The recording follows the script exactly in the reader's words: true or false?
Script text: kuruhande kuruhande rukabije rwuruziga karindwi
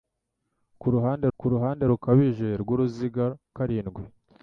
true